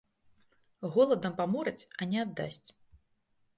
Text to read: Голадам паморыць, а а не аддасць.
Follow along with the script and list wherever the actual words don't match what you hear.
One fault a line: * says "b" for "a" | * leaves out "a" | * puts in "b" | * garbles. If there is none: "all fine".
* leaves out "а"